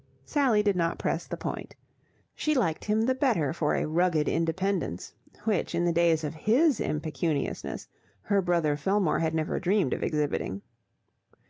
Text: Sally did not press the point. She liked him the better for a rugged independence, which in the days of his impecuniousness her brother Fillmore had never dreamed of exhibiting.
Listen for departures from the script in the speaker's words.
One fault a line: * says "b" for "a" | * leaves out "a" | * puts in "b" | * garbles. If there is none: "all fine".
all fine